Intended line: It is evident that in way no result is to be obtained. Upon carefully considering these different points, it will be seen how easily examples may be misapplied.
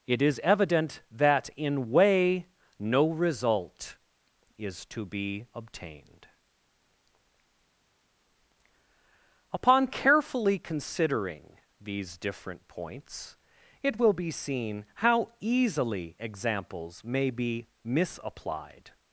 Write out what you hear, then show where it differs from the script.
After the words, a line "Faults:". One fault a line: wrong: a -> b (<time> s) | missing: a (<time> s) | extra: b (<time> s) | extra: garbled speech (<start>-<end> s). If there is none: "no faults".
It is evident that in way no result is to be obtained. Upon carefully considering these different points, it will be seen how easily examples may be misapplied.
Faults:
no faults